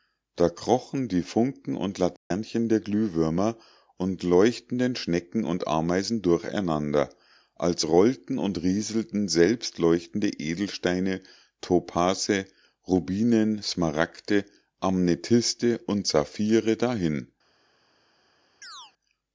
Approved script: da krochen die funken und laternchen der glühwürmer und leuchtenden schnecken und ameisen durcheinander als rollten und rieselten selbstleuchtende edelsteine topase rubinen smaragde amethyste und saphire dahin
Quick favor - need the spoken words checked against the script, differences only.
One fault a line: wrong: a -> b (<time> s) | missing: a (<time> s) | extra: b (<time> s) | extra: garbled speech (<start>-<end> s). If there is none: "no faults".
no faults